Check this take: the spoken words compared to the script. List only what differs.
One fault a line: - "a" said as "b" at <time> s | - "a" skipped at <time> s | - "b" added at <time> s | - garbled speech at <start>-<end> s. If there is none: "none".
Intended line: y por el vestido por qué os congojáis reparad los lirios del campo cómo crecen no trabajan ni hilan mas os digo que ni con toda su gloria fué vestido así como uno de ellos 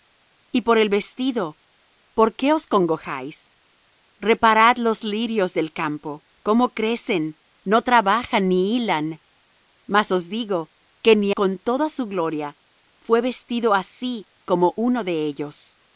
none